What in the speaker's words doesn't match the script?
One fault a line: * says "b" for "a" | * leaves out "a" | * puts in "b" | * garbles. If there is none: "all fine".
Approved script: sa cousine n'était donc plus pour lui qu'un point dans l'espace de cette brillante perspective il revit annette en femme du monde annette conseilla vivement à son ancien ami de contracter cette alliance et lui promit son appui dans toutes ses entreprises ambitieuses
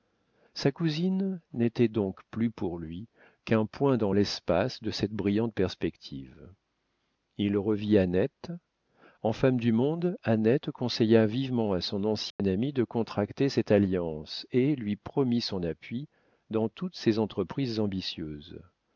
all fine